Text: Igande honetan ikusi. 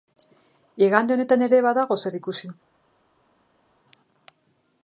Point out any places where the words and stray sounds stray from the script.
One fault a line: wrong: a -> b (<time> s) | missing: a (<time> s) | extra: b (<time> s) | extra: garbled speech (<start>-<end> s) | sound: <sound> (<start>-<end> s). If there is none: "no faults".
extra: ere badago zer (1.5 s)